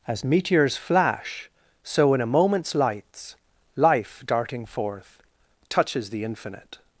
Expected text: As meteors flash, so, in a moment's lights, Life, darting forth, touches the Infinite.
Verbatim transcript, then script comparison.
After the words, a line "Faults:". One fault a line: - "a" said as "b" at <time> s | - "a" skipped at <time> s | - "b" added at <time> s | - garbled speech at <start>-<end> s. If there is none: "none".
As meteors flash, so, in a moment's lights, Life, darting forth, touches the Infinite.
Faults:
none